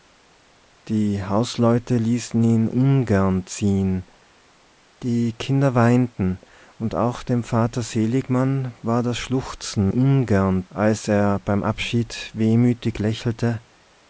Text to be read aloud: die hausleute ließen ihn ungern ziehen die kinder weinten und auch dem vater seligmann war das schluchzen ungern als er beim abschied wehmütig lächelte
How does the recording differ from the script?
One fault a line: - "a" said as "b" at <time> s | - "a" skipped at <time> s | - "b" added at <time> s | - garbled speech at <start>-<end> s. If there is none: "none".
none